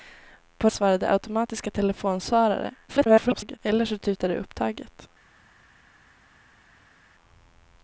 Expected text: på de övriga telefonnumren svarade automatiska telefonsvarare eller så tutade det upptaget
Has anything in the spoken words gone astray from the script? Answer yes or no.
yes